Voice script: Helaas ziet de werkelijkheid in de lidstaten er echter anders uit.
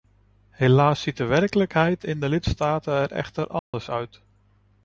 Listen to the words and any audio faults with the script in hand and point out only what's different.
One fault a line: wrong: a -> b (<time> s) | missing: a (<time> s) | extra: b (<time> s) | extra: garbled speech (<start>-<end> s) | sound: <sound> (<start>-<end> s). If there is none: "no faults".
sound: dropout (3.6-3.7 s)